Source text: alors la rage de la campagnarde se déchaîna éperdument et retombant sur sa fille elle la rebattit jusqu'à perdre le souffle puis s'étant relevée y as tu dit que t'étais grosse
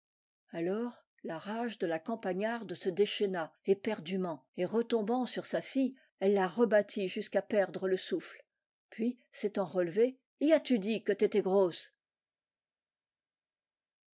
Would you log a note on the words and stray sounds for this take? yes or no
no